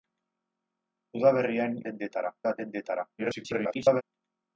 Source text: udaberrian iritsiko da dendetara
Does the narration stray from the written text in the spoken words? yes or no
yes